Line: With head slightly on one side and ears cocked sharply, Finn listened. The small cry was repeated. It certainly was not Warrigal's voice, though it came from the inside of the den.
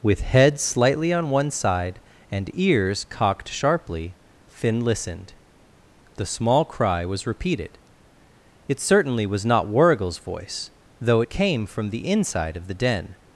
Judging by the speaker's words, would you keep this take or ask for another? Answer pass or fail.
pass